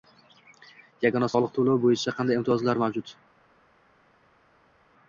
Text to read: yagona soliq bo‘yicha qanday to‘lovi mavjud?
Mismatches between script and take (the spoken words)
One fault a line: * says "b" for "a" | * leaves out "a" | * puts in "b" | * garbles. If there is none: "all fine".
* puts in "to‘lovi"
* says "imtiyozlar" for "to‘lovi"